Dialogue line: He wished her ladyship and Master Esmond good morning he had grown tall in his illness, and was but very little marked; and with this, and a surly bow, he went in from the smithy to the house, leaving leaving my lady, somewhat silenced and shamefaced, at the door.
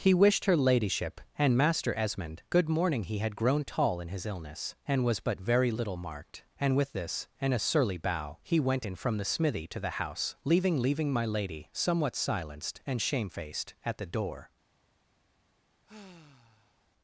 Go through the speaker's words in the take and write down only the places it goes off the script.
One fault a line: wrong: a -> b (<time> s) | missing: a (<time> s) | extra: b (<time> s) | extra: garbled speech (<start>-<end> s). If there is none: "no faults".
no faults